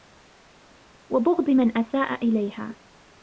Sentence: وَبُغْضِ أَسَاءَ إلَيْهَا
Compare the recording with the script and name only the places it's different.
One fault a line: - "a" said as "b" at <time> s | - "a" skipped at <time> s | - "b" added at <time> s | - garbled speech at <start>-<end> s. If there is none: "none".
- "مَنْ" added at 1.5 s